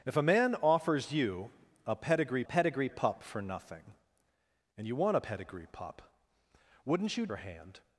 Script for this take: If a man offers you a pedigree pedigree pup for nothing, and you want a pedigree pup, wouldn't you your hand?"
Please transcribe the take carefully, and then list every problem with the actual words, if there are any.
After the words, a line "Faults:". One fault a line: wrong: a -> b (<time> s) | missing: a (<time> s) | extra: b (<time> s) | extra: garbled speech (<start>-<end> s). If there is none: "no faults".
If a man offers you a pedigree pedigree pup for nothing, and you want a pedigree pup, wouldn't you your hand?"
Faults:
no faults